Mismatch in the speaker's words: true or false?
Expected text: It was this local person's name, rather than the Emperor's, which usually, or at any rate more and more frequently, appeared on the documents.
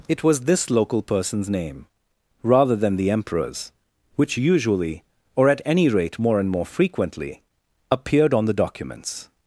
false